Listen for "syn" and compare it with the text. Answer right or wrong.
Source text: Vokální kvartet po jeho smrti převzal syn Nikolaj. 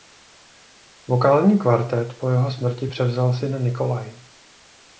right